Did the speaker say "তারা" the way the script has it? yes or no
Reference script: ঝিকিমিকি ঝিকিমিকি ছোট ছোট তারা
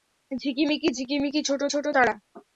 yes